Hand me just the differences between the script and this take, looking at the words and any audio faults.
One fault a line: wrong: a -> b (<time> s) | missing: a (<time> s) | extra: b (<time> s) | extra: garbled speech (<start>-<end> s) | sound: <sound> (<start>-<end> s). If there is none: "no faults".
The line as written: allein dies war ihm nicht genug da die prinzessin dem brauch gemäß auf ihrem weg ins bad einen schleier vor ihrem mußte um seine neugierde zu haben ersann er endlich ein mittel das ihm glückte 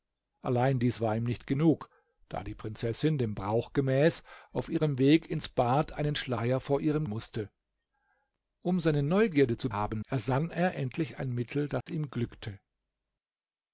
sound: dropout (11.8-11.9 s)